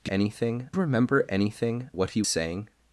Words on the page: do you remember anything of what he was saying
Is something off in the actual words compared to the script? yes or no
yes